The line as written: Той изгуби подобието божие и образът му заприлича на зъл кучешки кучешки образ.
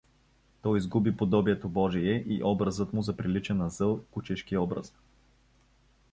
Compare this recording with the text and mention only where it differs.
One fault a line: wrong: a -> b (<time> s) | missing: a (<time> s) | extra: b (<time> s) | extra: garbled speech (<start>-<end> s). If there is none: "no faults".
missing: кучешки (4.6 s)